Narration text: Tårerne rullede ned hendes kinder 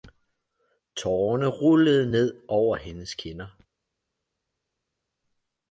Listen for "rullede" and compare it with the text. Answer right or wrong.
right